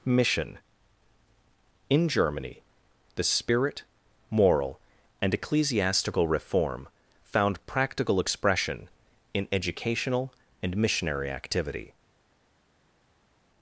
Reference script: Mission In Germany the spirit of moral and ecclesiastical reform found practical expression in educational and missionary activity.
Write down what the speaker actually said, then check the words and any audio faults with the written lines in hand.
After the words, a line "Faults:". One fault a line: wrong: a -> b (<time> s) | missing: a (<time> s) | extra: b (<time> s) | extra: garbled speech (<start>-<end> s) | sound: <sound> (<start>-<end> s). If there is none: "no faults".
Mission In Germany the spirit moral and ecclesiastical reform found practical expression in educational and missionary activity.
Faults:
missing: of (3.8 s)